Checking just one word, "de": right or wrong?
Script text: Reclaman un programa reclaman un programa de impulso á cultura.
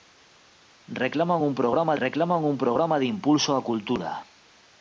right